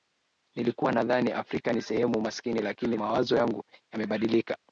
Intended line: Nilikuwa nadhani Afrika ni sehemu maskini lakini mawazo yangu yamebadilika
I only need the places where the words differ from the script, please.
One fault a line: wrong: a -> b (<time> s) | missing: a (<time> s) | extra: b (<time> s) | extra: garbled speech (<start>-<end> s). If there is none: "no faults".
no faults